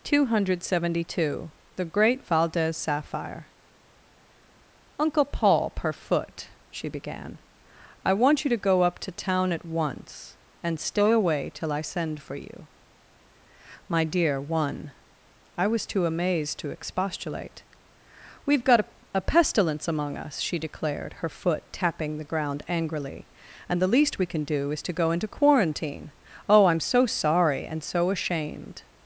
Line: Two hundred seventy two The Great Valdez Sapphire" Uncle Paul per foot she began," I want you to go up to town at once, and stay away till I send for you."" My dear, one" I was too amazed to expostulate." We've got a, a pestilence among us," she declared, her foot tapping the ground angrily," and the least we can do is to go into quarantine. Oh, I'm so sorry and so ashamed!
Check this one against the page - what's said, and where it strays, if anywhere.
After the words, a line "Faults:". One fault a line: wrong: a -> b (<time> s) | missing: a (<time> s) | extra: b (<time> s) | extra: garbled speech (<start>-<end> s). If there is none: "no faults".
Two hundred seventy two The Great Valdez Sapphire" Uncle Paul per foot she began," I want you to go up to town at once, and stay away till I send for you."" My dear, one" I was too amazed to expostulate." We've got a, a pestilence among us," she declared, her foot tapping the ground angrily," and the least we can do is to go into quarantine. Oh, I'm so sorry and so ashamed!
Faults:
no faults